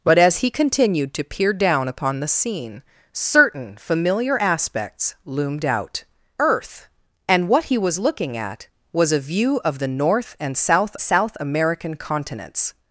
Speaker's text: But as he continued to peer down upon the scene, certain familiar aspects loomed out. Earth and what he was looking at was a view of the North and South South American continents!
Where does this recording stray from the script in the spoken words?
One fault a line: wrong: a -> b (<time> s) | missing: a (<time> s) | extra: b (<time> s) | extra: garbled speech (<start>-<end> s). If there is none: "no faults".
no faults